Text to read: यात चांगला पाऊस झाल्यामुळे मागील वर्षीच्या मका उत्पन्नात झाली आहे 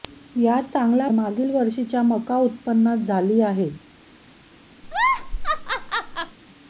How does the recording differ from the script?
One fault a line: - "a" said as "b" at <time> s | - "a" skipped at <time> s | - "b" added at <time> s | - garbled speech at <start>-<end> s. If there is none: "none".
- "पाऊस झाल्यामुळे" skipped at 1.1 s